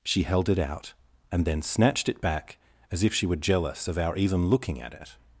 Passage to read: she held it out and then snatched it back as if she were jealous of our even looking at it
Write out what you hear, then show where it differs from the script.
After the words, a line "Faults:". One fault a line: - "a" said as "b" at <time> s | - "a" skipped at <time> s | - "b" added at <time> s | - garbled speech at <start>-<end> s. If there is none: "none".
she held it out and then snatched it back as if she were jealous of our even looking at it
Faults:
none